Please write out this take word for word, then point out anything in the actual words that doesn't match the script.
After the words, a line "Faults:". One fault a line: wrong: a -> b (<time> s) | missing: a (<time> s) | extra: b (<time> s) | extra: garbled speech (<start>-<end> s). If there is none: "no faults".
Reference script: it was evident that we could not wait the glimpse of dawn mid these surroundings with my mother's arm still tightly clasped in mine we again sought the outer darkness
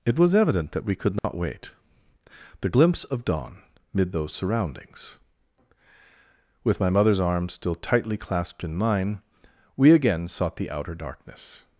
it was evident that we could not wait the glimpse of dawn mid those surroundings with my mother's arm still tightly clasped in mine we again sought the outer darkness
Faults:
wrong: these -> those (4.1 s)